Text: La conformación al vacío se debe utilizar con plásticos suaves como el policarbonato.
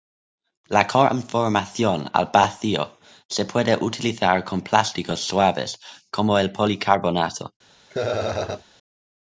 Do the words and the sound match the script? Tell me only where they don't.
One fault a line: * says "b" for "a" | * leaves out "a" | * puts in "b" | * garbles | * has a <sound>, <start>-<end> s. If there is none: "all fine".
* says "puede" for "debe"
* has a laugh, 7.9-8.7 s